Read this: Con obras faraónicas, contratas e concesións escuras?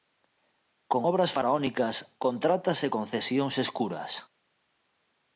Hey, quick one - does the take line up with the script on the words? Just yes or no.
yes